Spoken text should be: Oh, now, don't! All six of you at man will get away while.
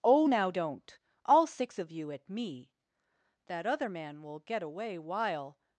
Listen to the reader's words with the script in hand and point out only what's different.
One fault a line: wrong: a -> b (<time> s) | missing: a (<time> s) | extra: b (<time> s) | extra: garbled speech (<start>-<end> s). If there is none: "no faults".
extra: me That other (2.3 s)